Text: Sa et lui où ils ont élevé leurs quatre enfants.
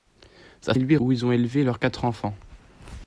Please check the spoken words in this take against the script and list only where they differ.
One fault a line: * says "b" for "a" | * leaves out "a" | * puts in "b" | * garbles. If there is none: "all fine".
all fine